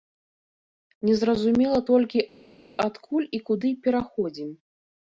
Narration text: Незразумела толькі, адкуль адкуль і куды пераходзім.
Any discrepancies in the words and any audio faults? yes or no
yes